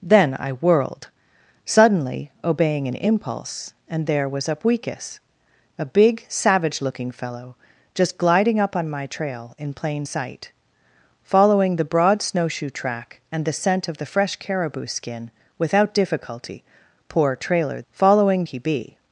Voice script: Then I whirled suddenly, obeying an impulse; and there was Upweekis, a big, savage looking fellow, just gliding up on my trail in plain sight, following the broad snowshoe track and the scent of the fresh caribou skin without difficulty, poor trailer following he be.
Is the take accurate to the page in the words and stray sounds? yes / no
yes